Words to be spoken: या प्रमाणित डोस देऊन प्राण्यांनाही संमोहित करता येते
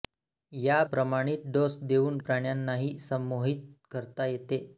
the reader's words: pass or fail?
pass